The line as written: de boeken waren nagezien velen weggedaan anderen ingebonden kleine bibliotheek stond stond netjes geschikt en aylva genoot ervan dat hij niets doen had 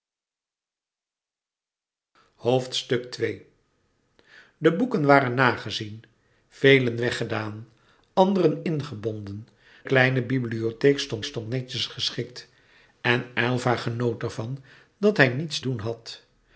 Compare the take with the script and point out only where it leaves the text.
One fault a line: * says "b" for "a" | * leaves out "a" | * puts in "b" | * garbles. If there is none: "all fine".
all fine